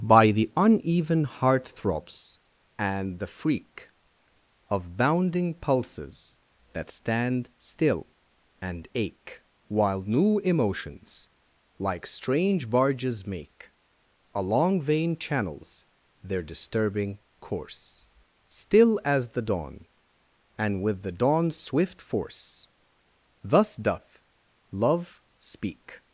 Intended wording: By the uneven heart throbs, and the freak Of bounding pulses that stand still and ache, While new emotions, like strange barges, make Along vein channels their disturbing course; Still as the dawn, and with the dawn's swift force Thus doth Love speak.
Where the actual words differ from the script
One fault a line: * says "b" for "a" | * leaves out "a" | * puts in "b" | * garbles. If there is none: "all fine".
all fine